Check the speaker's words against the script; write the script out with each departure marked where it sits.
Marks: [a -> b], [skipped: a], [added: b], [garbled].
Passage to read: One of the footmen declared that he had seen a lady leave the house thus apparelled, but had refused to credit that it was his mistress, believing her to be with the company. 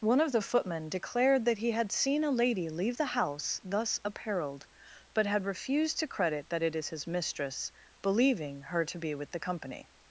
One of the footmen declared that he had seen a lady leave the house thus apparelled, but had refused to credit that it [was -> is] his mistress, believing her to be with the company.